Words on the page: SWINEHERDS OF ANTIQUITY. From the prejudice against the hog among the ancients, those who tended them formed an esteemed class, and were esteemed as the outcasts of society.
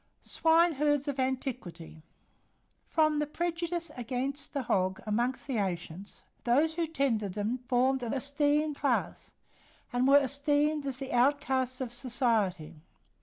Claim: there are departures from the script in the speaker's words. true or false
false